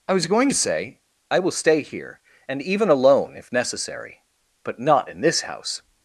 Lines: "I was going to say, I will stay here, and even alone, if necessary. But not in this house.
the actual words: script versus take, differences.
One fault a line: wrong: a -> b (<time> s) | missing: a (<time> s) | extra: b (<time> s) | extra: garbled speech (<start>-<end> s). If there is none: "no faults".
no faults